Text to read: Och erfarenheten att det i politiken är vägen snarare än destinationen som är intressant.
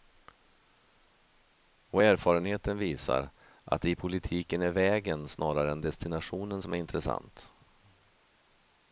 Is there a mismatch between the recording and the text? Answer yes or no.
yes